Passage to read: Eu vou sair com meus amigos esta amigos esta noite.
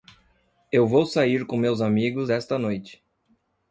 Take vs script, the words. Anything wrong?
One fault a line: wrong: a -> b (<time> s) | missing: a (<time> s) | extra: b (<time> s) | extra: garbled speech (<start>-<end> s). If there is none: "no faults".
missing: amigos esta (2.6 s)